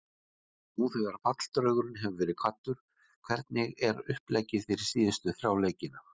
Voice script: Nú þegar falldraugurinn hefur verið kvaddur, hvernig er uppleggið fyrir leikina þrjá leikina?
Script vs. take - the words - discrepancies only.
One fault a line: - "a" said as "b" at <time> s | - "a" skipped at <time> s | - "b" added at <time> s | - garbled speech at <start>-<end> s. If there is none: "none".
- "leikina" said as "síðustu" at 5.0 s